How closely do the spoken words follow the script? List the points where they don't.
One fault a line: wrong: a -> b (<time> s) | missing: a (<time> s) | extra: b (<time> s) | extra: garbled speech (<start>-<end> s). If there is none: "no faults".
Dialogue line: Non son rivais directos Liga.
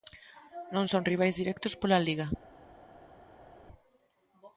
extra: pola (1.8 s)